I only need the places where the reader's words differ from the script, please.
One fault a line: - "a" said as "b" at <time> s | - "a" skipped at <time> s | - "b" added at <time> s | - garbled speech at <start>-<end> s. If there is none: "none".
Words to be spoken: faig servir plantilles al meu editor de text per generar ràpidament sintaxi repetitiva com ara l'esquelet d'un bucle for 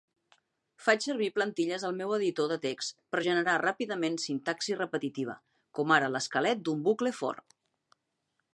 none